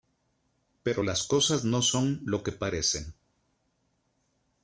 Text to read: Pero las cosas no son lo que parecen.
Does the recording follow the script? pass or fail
pass